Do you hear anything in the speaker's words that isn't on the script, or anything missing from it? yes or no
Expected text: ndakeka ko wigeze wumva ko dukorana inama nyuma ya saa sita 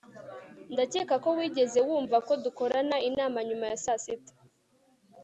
no